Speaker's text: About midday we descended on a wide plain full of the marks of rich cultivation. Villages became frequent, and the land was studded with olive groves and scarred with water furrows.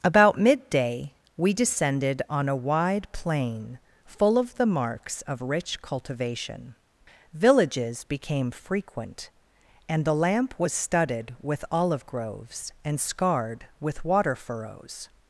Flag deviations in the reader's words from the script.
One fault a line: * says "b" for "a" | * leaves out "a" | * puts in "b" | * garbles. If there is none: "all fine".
* says "lamp" for "land"